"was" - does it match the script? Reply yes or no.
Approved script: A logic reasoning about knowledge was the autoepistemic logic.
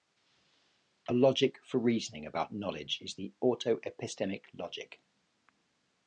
no